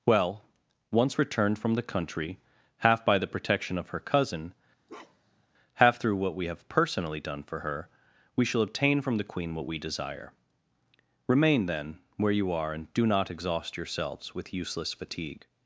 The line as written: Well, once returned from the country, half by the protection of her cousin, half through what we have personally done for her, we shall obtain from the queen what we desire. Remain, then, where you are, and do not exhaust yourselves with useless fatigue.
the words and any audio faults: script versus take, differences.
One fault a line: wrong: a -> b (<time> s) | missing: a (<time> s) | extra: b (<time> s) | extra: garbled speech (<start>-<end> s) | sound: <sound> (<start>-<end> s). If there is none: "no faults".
sound: bark (4.9-5.5 s)